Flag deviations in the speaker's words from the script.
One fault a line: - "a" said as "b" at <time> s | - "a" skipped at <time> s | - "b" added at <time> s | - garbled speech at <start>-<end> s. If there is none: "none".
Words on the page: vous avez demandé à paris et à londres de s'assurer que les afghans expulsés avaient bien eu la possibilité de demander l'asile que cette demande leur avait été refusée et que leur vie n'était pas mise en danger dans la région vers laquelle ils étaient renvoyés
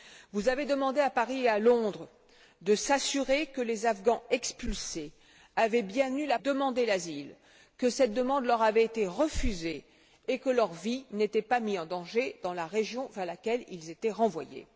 - "possibilité de" skipped at 6.4 s